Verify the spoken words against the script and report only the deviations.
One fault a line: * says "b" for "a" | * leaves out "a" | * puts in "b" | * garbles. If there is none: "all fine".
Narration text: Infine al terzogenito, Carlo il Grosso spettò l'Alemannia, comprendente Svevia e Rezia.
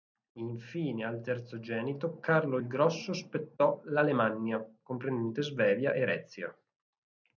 all fine